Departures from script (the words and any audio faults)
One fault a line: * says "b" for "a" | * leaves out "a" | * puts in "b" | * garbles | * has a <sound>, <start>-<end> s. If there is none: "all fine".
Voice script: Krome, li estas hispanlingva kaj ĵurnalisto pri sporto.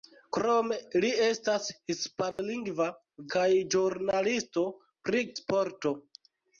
* has a dropout, 2.3-2.4 s